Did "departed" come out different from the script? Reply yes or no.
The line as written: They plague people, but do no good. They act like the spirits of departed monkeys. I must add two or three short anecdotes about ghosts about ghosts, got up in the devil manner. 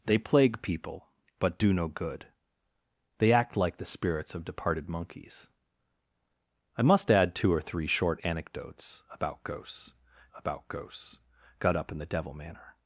no